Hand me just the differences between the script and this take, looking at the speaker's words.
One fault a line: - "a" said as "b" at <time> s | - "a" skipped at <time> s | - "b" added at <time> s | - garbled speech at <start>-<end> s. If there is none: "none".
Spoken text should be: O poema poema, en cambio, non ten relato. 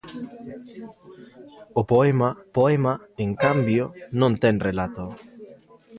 none